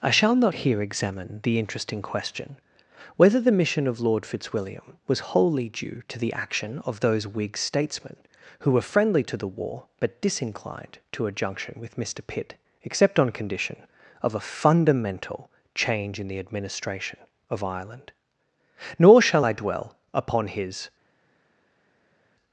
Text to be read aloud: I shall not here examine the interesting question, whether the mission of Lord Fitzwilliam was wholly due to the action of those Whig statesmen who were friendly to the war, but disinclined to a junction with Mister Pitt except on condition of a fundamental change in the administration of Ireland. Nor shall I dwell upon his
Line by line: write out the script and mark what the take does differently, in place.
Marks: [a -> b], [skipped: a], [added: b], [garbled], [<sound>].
I shall not here examine the interesting question, whether the mission of Lord Fitzwilliam was wholly due to the action of those Whig statesmen who were friendly to the war, but disinclined to a junction with Mister Pitt except on condition of a fundamental change in the administration of Ireland. Nor shall I dwell upon his